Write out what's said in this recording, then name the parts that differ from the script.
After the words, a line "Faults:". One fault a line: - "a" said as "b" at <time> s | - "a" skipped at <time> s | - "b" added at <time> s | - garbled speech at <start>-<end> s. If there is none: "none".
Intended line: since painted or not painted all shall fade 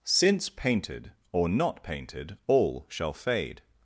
since painted or not painted all shall fade
Faults:
none